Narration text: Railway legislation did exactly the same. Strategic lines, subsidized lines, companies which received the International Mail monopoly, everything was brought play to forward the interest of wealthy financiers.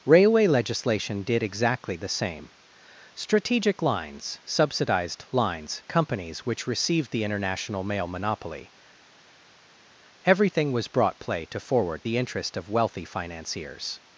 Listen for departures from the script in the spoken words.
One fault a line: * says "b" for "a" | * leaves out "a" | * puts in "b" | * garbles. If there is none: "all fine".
all fine